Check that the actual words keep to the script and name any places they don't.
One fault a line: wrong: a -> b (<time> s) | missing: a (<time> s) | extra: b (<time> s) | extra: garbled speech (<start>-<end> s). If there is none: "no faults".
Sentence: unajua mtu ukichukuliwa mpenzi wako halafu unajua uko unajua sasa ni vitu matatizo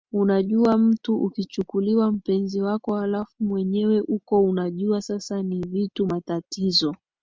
wrong: unajua -> mwenyewe (3.4 s)